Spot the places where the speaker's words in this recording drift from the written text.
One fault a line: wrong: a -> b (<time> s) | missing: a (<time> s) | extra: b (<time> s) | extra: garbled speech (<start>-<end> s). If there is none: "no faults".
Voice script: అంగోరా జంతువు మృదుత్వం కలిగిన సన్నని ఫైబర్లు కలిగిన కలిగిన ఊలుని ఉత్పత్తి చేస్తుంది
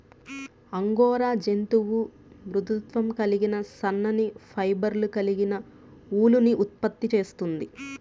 missing: కలిగిన (5.5 s)